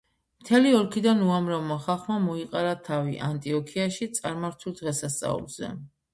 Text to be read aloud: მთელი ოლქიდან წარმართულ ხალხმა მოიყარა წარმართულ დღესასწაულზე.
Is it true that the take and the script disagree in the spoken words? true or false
true